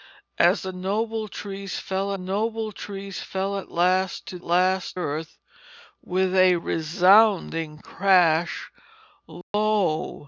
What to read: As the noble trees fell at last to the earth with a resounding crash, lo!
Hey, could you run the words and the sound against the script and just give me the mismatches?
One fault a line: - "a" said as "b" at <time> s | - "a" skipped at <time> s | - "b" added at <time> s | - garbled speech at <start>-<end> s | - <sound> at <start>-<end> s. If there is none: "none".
- "noble trees fell" added at 2.2 s
- "the" said as "last" at 4.4 s
- dropout at 9.4-9.5 s